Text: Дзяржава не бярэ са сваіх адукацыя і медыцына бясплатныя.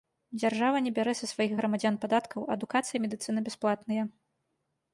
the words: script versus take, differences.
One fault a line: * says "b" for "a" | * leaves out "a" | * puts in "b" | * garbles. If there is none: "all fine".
* puts in "грамадзян падаткаў"